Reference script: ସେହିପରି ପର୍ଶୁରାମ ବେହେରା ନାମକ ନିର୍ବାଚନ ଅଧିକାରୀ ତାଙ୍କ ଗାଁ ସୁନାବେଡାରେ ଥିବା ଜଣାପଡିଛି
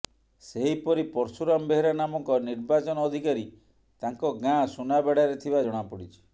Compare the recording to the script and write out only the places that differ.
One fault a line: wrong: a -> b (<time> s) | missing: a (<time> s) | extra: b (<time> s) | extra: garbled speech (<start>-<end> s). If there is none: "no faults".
no faults